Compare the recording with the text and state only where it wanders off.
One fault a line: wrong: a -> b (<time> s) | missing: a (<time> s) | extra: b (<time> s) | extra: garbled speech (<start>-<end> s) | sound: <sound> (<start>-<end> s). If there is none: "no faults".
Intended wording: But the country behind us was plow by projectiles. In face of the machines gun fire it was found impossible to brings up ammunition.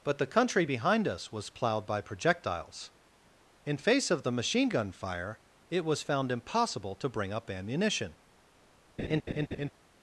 wrong: plow -> plowed (1.5 s)
wrong: machines -> machine (4.3 s)
wrong: brings -> bring (7.1 s)
sound: laugh (9.0-9.7 s)